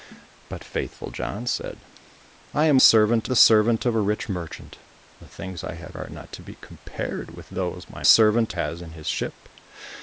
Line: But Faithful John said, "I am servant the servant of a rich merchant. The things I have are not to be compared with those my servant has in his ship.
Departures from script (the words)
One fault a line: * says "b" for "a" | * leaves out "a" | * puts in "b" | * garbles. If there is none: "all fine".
all fine